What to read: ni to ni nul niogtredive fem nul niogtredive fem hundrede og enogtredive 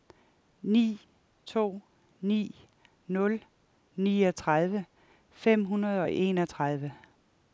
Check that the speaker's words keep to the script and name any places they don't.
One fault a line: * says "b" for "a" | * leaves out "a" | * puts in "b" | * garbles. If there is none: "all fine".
* leaves out "nul niogtredive fem"